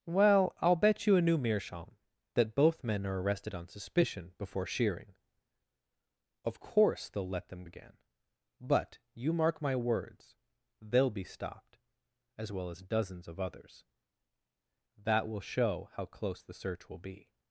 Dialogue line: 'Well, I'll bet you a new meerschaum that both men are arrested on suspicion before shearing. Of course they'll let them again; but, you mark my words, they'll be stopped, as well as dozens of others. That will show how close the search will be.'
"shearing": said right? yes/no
yes